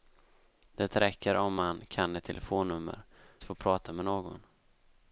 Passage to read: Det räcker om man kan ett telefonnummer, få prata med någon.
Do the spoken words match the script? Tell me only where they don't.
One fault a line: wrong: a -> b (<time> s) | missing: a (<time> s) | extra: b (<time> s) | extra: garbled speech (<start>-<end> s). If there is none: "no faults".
no faults